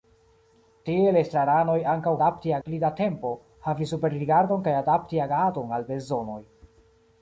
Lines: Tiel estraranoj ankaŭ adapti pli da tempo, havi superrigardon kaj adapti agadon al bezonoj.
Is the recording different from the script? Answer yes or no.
no